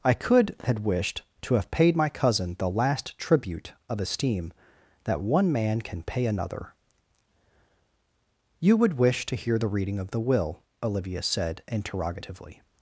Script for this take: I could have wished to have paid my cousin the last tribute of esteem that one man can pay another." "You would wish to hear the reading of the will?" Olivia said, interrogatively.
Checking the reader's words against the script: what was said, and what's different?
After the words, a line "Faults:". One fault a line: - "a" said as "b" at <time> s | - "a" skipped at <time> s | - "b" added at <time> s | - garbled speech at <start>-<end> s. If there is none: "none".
I could had wished to have paid my cousin the last tribute of esteem that one man can pay another." "You would wish to hear the reading of the will?" Olivia said, interrogatively.
Faults:
- "have" said as "had" at 0.6 s